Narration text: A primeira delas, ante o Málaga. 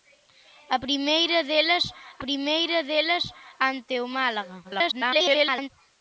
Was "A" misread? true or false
false